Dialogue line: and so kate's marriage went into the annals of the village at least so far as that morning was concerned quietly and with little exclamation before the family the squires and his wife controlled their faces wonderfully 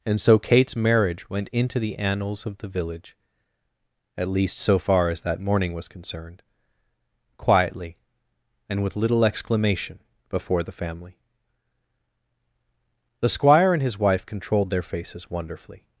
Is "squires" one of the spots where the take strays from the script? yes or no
yes